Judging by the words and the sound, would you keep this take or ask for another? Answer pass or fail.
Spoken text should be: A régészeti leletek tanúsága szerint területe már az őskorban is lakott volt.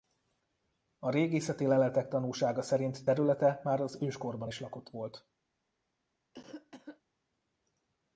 fail